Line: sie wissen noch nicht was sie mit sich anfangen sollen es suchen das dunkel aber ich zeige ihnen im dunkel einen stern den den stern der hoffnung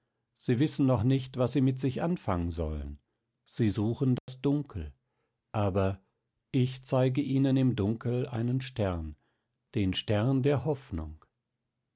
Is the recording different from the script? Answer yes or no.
yes